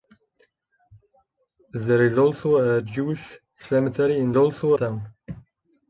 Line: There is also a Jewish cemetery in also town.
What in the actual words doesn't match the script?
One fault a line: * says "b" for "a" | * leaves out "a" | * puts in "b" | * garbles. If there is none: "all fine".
all fine